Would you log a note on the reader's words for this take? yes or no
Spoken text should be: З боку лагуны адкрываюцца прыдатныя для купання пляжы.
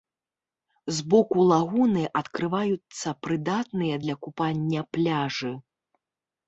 no